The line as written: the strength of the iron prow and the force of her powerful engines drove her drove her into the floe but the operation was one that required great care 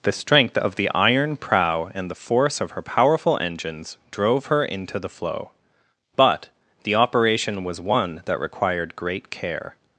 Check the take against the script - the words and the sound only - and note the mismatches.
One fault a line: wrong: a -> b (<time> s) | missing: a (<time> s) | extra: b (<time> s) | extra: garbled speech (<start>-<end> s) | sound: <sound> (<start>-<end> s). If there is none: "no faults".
missing: drove her (4.6 s)